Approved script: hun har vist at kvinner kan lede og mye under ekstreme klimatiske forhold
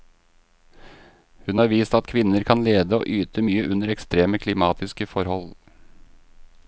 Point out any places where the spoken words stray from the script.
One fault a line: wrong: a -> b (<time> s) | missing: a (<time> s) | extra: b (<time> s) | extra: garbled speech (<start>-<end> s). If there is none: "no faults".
extra: yte (3.1 s)